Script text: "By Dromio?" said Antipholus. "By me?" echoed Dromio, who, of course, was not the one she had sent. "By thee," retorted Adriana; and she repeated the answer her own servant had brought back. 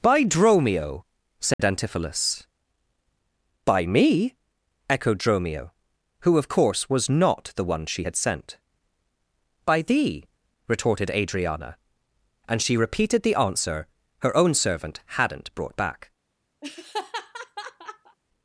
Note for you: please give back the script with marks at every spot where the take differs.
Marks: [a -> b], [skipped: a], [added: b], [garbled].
"By Dromio?" said Antipholus. "By me?" echoed Dromio, who, of course, was not the one she had sent. "By thee," retorted Adriana; and she repeated the answer her own servant [had -> hadn't] brought back.